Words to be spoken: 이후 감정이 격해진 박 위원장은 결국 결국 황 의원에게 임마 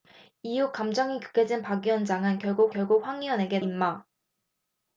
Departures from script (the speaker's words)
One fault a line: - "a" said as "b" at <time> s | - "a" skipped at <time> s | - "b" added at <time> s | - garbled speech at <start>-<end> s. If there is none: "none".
none